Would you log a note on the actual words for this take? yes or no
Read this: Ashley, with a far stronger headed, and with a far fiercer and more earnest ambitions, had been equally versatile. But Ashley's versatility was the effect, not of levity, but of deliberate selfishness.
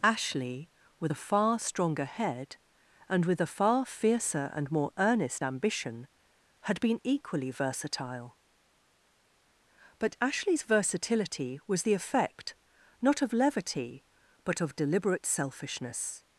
yes